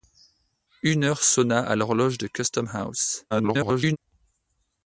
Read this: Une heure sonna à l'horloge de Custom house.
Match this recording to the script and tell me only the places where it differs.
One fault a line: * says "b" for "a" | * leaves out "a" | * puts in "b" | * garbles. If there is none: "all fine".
* garbles